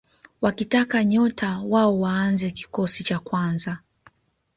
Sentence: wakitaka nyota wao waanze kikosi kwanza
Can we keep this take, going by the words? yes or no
no